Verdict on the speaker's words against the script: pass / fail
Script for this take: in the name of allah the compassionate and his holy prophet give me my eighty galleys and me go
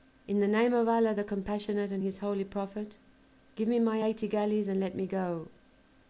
fail